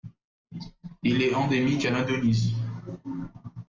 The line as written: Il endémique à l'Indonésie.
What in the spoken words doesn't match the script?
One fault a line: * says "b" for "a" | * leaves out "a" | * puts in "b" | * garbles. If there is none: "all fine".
* puts in "est"